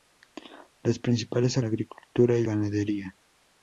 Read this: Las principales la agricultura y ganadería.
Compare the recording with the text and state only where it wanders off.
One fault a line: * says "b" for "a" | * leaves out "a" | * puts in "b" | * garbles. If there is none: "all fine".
all fine